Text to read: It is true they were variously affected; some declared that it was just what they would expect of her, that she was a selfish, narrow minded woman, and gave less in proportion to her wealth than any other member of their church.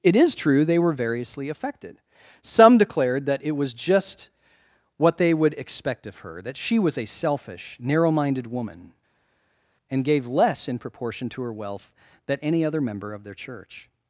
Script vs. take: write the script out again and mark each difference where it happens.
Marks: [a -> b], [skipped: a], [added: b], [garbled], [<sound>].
It is true they were variously affected; some declared that it was just what they would expect of her, that she was a selfish, narrow minded woman, and gave less in proportion to her wealth than any other member of their church.